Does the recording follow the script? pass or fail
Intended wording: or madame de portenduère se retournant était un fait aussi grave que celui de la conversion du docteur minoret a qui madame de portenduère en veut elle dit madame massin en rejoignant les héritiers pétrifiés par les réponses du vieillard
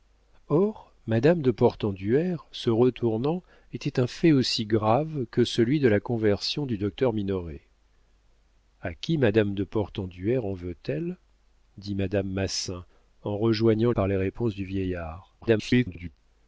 fail